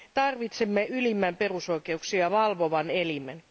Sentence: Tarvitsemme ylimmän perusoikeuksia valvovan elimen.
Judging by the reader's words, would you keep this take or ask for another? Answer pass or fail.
pass